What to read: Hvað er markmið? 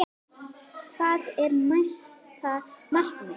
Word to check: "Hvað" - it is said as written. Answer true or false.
true